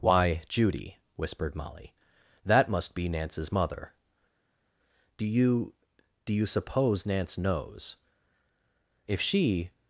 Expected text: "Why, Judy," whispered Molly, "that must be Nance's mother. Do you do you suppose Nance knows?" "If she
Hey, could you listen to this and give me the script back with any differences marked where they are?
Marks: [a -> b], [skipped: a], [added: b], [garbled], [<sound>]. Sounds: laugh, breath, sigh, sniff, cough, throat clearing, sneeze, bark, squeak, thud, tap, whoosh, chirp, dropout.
"Why, Judy," whispered Molly, "that must be Nance's mother. Do you do you suppose Nance knows?" "If she